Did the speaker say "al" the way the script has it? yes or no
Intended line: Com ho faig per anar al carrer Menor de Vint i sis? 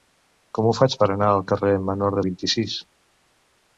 yes